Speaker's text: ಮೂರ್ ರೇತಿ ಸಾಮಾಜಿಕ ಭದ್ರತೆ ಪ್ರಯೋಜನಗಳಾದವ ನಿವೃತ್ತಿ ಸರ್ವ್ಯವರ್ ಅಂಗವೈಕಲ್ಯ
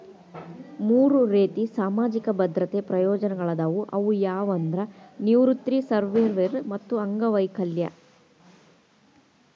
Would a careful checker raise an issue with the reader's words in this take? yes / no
yes